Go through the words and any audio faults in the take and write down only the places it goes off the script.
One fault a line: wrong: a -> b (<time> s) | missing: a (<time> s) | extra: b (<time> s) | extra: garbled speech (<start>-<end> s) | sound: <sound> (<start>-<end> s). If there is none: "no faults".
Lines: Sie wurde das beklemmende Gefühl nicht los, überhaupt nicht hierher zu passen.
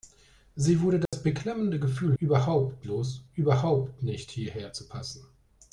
sound: dropout (1.1-1.1 s)
wrong: nicht -> überhaupt (2.2 s)